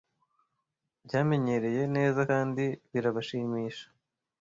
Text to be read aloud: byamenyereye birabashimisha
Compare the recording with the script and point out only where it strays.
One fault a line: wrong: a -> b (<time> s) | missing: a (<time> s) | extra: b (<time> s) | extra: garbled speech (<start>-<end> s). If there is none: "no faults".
extra: neza kandi (1.9 s)